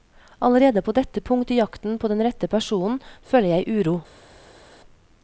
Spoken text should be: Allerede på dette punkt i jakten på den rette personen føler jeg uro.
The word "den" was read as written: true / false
true